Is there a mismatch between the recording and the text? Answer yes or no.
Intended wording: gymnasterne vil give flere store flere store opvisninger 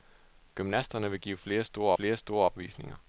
no